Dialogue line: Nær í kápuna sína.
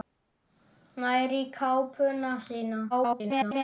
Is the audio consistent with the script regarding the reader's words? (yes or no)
no